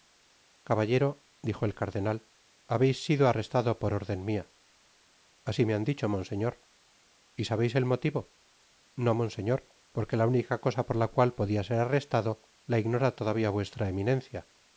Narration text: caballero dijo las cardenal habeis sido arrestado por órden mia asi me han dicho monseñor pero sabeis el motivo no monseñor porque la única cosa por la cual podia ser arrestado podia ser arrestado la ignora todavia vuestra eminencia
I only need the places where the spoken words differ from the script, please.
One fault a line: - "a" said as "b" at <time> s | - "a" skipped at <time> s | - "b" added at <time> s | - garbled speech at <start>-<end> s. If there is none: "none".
- "las" said as "el" at 1.6 s
- "pero" said as "y" at 7.3 s
- "podia ser arrestado" skipped at 12.5 s